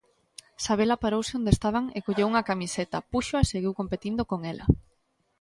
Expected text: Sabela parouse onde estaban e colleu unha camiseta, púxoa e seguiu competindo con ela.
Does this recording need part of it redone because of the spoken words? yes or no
no